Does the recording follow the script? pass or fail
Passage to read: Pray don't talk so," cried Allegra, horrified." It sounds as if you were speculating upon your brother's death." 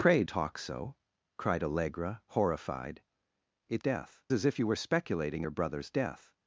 fail